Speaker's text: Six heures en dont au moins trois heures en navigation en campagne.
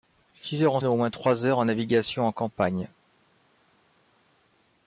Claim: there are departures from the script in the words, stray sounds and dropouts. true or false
false